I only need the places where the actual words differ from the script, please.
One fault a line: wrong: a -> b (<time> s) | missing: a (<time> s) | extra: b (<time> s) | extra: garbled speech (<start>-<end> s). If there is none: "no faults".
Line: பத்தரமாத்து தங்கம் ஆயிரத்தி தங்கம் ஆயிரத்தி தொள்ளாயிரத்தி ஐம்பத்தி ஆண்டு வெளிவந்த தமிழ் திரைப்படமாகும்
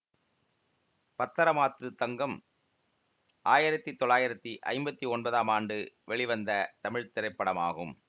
missing: தங்கம் ஆயிரத்தி (3.9 s)
extra: ஒன்பதாம் (5.1 s)